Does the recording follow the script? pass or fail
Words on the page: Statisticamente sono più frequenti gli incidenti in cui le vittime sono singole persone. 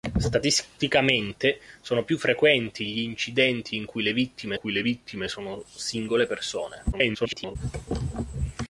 fail